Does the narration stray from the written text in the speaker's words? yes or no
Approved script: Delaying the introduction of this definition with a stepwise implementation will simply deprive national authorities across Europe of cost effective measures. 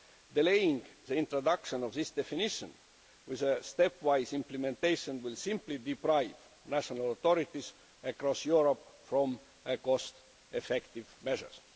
no